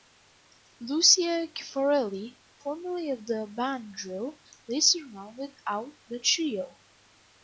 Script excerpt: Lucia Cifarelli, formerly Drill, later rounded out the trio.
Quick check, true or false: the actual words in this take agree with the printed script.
false